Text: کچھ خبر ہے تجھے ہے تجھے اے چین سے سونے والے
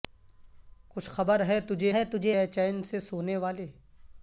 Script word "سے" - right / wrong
right